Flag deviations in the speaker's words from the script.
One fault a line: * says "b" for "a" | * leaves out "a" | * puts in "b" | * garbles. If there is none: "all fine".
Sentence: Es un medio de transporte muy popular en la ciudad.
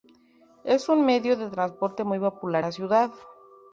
* leaves out "en"